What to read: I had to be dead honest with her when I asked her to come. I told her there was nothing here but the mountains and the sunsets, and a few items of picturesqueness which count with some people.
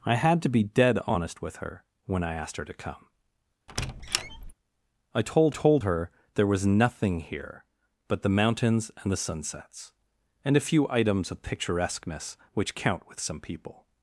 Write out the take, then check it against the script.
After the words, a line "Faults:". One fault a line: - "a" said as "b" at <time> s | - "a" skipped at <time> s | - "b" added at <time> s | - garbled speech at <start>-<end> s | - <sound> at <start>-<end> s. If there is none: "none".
I had to be dead honest with her when I asked her to come. I told told her there was nothing here but the mountains and the sunsets, and a few items of picturesqueness which count with some people.
Faults:
- squeak at 3.7-4.5 s
- "told" added at 5.5 s